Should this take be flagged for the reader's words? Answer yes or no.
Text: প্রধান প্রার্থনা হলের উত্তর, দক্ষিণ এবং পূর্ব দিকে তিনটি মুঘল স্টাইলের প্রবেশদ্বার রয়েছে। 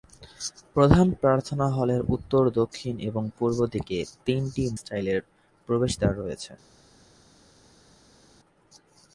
yes